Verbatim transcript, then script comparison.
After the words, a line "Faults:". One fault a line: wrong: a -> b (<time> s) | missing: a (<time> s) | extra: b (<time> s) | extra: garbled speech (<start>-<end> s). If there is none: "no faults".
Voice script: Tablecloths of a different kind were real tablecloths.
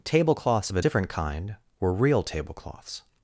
Tablecloths of a different kind were real tablecloths.
Faults:
no faults